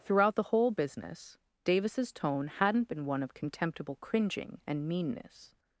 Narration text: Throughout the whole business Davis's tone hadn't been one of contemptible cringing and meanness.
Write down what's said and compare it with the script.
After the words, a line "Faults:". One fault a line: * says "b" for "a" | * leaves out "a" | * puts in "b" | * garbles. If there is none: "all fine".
Throughout the whole business Davis's tone hadn't been one of contemptible cringing and meanness.
Faults:
all fine